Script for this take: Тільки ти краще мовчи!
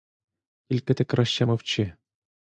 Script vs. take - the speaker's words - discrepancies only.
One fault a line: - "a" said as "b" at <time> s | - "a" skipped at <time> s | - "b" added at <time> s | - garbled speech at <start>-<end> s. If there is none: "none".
none